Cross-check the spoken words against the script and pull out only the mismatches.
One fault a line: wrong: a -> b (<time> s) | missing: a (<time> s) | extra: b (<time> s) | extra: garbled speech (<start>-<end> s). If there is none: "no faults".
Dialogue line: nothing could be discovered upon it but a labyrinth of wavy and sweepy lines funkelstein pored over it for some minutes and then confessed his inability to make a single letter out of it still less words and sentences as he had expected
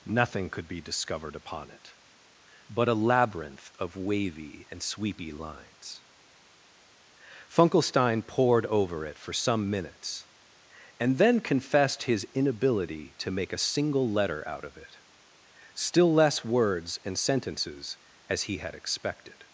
no faults